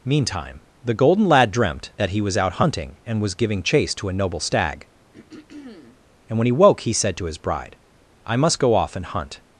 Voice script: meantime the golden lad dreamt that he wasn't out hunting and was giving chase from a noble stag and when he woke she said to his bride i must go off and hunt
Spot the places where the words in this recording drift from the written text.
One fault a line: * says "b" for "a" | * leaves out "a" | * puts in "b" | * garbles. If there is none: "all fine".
* says "was" for "wasn't"
* says "to" for "from"
* says "he" for "she"